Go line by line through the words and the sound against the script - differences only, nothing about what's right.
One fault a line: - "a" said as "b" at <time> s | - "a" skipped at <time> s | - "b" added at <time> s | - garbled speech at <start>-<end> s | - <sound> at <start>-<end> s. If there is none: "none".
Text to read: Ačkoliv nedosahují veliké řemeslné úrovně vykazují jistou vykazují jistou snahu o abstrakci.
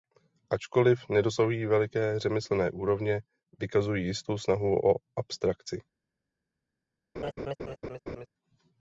- "vykazují jistou" skipped at 4.4 s
- laugh at 7.2-8.3 s